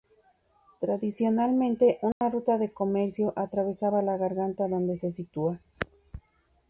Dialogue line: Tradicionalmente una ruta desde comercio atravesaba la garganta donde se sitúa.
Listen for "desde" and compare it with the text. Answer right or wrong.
wrong